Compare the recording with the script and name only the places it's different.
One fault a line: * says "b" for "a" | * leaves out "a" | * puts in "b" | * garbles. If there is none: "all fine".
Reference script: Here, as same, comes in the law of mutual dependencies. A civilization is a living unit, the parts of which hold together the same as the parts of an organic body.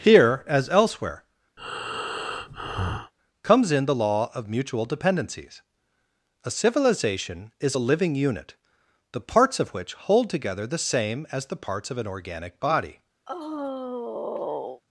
* says "elsewhere" for "same"